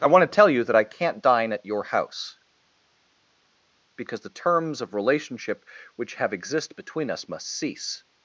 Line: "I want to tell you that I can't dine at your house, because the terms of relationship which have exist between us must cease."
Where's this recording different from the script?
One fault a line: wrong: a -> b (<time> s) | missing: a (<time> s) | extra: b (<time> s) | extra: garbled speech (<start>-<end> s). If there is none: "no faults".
no faults